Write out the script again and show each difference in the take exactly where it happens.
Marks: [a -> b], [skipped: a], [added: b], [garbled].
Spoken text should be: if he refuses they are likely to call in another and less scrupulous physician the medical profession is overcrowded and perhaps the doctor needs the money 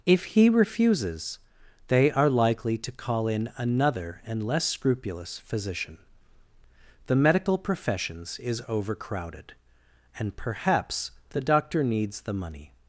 if he refuses they are likely to call in another and less scrupulous physician the medical [profession -> professions] is overcrowded and perhaps the doctor needs the money